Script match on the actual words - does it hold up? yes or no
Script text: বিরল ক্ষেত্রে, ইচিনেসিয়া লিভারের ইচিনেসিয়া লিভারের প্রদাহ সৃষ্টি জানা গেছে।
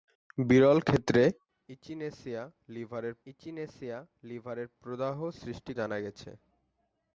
yes